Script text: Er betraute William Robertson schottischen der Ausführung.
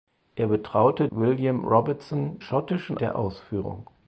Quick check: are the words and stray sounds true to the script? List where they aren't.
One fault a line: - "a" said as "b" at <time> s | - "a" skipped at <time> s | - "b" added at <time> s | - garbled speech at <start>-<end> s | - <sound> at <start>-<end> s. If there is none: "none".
none